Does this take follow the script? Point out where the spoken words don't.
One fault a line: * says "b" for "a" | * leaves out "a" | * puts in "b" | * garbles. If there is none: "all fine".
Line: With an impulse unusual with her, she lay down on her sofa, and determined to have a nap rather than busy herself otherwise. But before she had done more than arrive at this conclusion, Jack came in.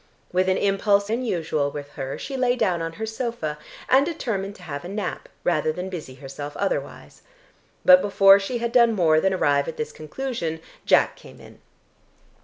all fine